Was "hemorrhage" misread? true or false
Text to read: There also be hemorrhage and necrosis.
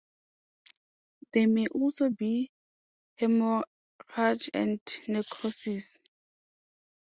false